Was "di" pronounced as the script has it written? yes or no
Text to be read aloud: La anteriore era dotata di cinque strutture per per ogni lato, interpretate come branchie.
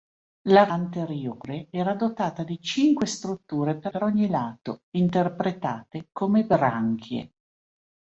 yes